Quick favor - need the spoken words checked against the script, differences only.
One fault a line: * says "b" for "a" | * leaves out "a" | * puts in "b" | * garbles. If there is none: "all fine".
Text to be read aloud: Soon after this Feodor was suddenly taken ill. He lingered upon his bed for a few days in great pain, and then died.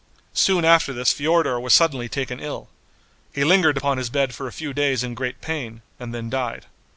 all fine